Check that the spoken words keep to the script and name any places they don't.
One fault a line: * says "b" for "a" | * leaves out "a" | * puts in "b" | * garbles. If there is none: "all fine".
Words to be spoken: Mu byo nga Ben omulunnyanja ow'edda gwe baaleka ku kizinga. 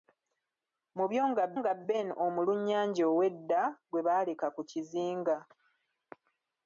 * puts in "nga"